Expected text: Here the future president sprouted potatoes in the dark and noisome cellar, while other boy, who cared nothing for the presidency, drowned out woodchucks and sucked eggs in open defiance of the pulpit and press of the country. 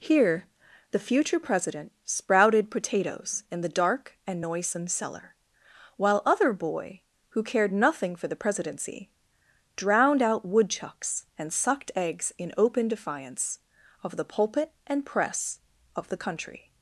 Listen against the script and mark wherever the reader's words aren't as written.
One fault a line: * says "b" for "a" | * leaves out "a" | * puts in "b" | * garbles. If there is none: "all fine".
all fine